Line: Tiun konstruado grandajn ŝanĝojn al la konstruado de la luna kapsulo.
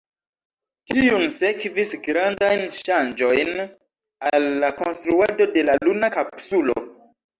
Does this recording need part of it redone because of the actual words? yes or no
yes